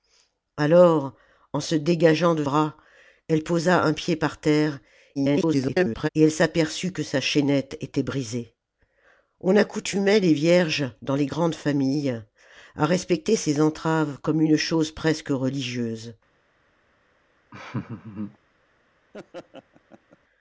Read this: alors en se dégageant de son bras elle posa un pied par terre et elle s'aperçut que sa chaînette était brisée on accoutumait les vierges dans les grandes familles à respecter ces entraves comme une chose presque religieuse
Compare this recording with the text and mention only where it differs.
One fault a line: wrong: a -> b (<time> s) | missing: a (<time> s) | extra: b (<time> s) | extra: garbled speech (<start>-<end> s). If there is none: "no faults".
missing: son (2.4 s)
extra: garbled speech (5.2-6.1 s)